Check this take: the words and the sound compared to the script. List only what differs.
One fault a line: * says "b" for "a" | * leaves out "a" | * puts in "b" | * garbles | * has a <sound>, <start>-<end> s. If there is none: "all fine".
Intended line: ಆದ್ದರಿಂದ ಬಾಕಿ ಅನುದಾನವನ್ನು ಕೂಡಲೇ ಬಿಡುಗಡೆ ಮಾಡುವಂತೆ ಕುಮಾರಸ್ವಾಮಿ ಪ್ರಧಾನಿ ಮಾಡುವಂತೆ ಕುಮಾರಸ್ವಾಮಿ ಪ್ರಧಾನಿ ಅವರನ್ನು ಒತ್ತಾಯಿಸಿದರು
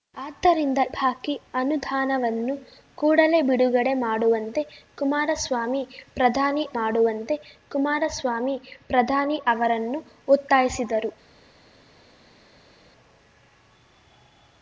all fine